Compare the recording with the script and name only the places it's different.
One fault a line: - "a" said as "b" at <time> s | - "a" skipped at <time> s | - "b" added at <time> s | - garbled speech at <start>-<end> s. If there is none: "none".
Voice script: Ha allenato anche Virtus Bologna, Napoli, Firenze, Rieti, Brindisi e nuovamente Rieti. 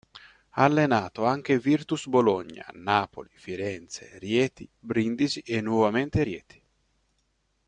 none